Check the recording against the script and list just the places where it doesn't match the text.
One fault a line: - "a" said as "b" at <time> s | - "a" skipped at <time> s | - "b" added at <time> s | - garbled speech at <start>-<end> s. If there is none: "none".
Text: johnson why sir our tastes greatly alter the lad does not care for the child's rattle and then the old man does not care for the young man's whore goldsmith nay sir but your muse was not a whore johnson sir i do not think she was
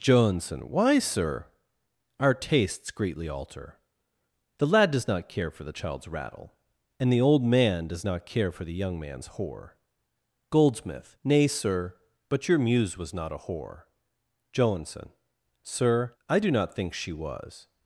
- "then" skipped at 7.1 s